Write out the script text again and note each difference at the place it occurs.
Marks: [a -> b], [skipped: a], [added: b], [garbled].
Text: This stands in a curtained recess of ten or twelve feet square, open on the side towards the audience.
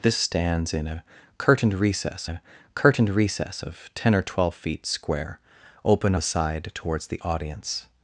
This stands in a curtained recess [added: a curtained recess] of ten or twelve feet square, open [skipped: on] the side towards the audience.